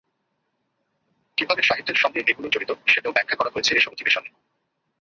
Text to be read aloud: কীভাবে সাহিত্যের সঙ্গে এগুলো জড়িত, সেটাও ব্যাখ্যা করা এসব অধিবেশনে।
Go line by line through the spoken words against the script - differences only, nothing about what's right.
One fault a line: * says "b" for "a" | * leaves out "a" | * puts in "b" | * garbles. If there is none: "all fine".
* puts in "হয়েছে"